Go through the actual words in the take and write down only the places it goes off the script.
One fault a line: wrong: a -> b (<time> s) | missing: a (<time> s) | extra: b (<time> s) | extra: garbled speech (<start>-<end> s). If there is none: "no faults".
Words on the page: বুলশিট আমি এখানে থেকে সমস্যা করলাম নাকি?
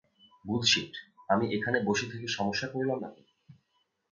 extra: বসে (1.8 s)